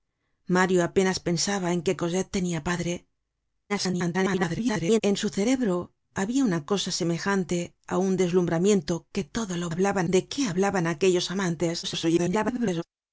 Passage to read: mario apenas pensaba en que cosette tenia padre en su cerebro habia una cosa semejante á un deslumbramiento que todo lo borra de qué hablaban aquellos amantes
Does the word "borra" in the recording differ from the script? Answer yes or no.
yes